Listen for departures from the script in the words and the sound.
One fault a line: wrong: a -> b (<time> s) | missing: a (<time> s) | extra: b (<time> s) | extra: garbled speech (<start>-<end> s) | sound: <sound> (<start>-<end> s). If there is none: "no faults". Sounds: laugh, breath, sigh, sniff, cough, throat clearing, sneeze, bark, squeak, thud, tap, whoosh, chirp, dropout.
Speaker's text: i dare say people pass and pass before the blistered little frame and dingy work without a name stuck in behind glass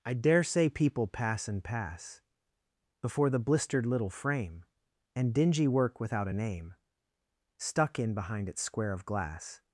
extra: its square of (8.5 s)